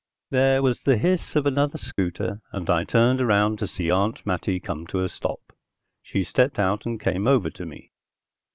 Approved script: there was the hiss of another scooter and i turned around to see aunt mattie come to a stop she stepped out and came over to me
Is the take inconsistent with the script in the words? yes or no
no